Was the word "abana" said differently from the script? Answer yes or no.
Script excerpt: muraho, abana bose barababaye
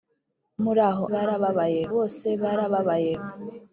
yes